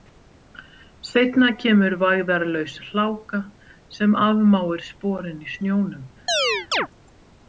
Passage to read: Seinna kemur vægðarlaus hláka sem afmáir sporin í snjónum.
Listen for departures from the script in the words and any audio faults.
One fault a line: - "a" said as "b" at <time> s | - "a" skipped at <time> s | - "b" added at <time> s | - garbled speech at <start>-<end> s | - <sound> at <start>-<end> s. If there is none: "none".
- chirp at 6.3-6.9 s